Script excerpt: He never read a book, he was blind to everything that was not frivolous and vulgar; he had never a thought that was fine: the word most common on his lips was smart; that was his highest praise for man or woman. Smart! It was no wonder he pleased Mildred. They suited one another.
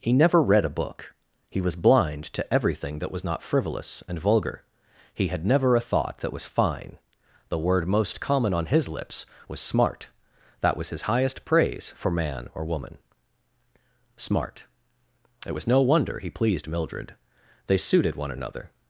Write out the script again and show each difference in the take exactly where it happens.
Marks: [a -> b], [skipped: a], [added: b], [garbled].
He never read a book, he was blind to everything that was not frivolous and vulgar; he had never a thought that was fine: the word most common on his lips was smart; that was his highest praise for man or woman. Smart! It was no wonder he pleased Mildred. They suited one another.